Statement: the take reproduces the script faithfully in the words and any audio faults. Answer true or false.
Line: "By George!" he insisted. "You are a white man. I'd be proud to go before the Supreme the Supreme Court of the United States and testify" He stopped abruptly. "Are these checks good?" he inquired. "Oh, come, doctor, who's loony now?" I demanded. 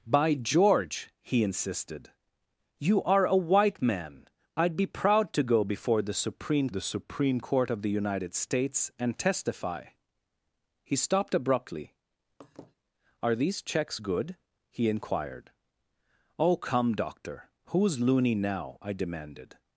false